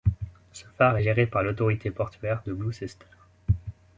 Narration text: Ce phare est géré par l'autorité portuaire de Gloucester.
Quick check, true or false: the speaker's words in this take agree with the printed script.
true